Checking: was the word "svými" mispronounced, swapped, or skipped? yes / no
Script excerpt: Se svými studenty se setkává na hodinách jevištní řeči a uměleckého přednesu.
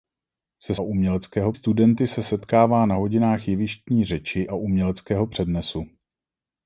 yes